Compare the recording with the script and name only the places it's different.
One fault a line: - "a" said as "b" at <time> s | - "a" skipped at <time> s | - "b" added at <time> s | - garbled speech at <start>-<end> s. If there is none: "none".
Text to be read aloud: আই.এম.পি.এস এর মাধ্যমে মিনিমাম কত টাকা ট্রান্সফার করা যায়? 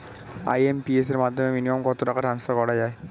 none